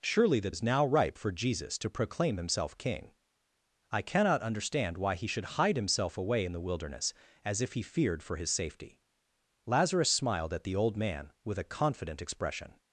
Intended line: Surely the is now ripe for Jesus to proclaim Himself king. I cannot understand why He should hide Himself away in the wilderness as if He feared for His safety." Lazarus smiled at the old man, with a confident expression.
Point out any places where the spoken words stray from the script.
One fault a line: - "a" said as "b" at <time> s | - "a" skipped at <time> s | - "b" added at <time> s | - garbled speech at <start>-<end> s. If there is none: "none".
none